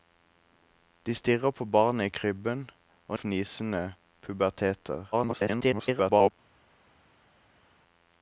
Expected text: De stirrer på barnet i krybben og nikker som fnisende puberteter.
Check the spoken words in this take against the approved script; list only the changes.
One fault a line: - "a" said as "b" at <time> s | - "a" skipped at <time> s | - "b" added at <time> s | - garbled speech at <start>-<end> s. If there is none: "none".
- "nikker som" skipped at 3.2 s
- garbled speech at 5.1-6.3 s